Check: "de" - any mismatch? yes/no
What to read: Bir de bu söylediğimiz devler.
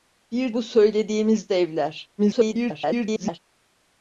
yes